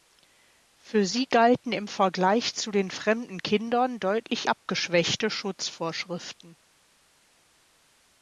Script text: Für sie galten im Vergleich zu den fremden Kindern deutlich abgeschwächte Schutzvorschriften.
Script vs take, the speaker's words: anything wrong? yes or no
no